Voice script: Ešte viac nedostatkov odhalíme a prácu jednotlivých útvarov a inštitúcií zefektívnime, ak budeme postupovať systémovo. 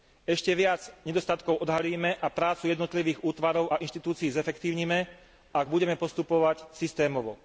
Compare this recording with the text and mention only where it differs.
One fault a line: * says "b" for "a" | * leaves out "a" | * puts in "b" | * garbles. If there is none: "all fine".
all fine